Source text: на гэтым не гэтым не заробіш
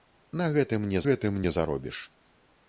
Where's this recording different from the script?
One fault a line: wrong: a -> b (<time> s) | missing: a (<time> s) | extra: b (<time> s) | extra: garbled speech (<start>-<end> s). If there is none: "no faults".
no faults